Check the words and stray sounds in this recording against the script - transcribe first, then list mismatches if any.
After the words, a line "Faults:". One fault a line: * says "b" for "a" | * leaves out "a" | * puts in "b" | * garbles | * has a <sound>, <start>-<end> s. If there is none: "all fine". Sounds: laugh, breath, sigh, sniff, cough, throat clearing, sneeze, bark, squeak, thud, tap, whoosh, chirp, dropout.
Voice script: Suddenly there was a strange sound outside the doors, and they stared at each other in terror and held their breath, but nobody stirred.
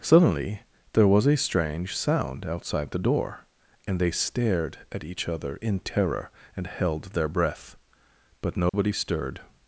Suddenly there was a strange sound outside the door, and they stared at each other in terror and held their breath, but nobody stirred.
Faults:
* says "door" for "doors"
* has a dropout, 8.7-8.7 s